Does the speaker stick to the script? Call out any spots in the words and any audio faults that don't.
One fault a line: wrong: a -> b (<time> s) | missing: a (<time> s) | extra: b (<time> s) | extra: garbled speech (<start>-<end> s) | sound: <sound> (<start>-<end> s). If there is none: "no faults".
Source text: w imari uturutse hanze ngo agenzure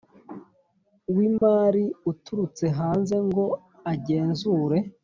sound: dropout (1.4-1.4 s)